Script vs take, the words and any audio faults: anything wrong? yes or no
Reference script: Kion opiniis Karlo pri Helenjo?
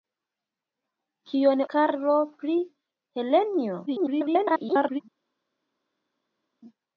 yes